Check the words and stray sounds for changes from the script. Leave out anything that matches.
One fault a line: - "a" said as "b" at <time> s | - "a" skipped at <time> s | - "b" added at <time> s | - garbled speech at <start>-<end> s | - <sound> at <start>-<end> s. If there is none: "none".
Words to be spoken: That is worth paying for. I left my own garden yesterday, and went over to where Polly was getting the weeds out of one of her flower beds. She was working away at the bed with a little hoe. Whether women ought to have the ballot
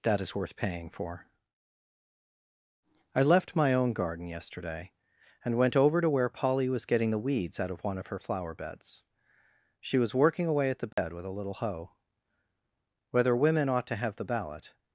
- dropout at 10.9-11.0 s